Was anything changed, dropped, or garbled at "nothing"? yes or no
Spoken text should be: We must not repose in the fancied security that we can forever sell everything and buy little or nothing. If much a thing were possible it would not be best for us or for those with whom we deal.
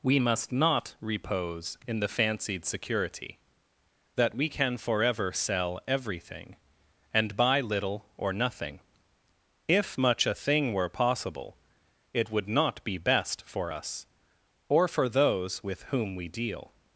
no